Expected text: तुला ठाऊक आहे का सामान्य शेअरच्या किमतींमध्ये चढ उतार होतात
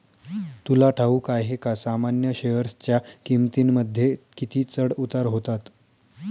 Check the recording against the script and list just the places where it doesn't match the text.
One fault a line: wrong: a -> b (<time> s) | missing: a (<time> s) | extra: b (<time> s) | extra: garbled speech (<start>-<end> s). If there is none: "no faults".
extra: किती (4.4 s)